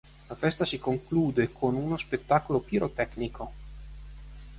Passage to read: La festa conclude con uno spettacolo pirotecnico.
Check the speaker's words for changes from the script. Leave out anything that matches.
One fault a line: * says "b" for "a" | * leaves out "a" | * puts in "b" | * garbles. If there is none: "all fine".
* puts in "si"